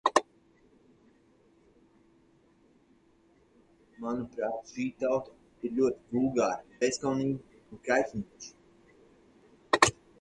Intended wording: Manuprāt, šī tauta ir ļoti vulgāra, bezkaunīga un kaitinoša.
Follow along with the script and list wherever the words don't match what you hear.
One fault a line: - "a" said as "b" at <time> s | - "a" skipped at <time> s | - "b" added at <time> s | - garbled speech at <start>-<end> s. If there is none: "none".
none